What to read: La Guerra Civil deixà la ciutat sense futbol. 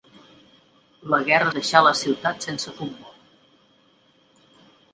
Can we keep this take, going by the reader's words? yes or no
no